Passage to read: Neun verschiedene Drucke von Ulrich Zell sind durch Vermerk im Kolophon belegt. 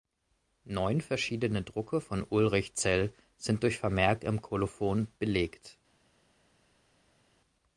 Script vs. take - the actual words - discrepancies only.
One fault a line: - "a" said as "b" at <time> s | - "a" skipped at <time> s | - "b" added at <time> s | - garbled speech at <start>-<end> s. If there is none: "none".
none